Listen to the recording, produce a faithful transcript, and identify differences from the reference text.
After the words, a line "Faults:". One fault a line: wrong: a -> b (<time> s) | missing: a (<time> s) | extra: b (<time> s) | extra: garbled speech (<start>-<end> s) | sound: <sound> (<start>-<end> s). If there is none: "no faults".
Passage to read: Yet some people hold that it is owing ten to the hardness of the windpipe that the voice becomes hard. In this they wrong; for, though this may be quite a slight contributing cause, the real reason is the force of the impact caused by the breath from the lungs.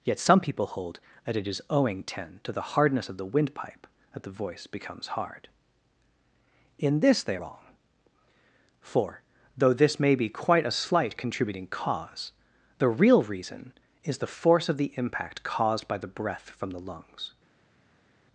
Yet some people hold that it is owing ten to the hardness of the windpipe that the voice becomes hard. In this they wrong; for, though this may be quite a slight contributing cause, the real reason is the force of the impact caused by the breath from the lungs.
Faults:
no faults